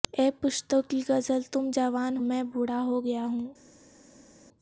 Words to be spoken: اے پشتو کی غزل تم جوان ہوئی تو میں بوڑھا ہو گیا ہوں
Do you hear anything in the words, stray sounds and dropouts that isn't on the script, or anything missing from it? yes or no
yes